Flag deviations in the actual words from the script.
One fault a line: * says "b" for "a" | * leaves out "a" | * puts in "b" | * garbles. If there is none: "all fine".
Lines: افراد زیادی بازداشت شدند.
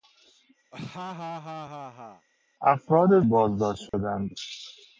* leaves out "زیادی"